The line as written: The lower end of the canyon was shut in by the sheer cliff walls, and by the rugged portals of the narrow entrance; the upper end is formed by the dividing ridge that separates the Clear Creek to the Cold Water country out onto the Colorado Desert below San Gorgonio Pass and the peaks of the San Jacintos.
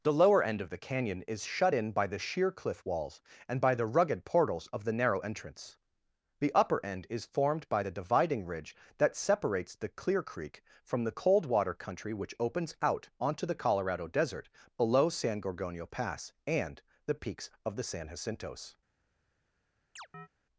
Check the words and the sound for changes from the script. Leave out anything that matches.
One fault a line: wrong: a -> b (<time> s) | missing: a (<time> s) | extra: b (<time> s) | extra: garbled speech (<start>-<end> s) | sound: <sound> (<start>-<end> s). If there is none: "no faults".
wrong: was -> is (1.3 s)
wrong: to -> from (10.8 s)
extra: which opens (12.1 s)
sound: chirp (20.0-20.3 s)